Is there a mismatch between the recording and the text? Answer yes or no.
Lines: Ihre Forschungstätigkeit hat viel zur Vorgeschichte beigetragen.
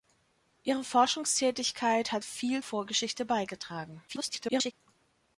yes